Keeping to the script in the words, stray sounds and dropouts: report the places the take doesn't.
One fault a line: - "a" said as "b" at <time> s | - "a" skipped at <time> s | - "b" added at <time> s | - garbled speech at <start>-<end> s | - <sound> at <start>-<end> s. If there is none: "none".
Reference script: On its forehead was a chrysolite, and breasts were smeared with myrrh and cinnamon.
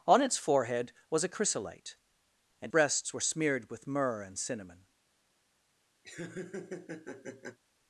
- laugh at 6.0-7.6 s